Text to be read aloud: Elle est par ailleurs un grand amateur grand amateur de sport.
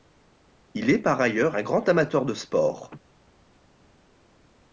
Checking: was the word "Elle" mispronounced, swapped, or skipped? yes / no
yes